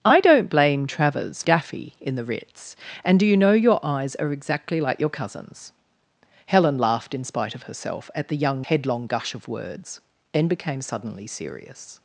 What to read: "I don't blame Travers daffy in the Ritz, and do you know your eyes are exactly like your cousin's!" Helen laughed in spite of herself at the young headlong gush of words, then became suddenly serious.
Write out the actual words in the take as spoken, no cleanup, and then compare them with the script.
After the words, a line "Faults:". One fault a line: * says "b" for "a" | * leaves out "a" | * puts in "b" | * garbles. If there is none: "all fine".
"I don't blame Travers daffy in the Ritz, and do you know your eyes are exactly like your cousin's!" Helen laughed in spite of herself at the young headlong gush of words, then became suddenly serious.
Faults:
all fine